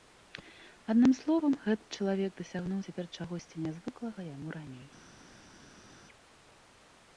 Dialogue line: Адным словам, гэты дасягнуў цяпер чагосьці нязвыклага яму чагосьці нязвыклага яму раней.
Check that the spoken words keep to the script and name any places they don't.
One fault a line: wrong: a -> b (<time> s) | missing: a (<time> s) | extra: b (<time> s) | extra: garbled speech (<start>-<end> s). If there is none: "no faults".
extra: чалавек (2.0 s)
missing: чагосьці нязвыклага яму (4.5 s)